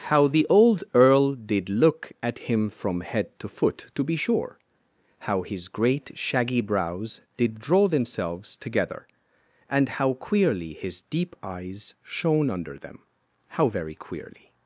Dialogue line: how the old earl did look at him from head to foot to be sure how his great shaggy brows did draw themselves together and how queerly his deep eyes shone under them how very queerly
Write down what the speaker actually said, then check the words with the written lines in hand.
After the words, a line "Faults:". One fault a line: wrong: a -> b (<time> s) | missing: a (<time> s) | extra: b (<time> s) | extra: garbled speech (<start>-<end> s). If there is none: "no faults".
how the old earl did look at him from head to foot to be sure how his great shaggy brows did draw themselves together and how queerly his deep eyes shone under them how very queerly
Faults:
no faults